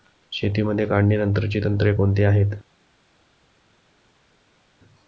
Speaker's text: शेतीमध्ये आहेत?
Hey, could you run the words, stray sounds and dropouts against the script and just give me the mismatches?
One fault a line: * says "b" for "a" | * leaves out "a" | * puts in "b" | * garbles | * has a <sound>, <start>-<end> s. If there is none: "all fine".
* puts in "काढणीनंतरची तंत्रे कोणती"